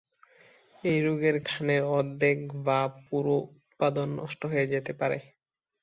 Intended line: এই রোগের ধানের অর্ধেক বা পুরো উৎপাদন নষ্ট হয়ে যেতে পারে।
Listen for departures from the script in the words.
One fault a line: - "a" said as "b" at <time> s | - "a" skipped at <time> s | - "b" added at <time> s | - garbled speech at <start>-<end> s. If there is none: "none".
none